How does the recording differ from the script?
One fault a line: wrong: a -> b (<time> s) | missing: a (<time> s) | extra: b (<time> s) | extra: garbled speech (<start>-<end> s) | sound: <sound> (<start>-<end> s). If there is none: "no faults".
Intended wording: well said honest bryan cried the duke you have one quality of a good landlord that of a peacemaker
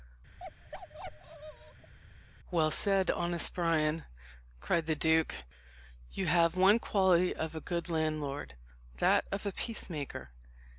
sound: bark (0.4-1.9 s)